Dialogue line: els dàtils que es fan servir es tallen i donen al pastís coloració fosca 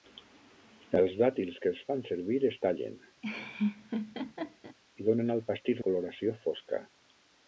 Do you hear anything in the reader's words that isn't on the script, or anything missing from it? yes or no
no